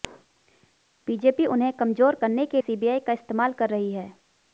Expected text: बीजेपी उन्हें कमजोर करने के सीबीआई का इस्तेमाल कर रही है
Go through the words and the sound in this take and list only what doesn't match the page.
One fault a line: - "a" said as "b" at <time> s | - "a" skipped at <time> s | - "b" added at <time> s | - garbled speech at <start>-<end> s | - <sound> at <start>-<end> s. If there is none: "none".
none